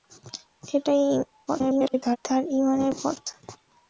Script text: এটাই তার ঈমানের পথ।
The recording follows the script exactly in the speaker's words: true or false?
false